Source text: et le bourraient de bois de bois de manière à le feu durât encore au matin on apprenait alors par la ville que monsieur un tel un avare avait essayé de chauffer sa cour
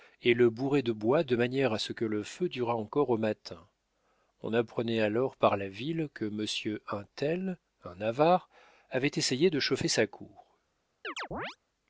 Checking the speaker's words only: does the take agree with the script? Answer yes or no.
no